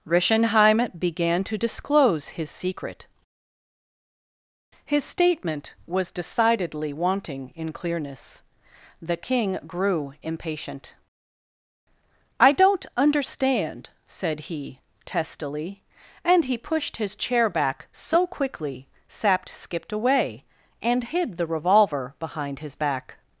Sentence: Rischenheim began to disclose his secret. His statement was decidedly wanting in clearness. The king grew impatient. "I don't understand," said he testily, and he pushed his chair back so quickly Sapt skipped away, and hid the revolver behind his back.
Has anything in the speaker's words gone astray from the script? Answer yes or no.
no